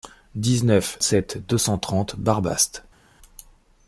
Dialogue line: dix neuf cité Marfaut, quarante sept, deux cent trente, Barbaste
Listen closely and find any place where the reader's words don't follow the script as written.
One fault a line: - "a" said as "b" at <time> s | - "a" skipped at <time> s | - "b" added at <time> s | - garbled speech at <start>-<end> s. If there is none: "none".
- "cité Marfaut quarante" skipped at 1.0 s